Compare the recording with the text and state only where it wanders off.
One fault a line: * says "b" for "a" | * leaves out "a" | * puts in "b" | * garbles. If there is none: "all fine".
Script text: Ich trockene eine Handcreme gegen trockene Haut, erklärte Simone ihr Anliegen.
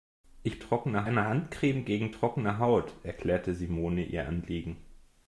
all fine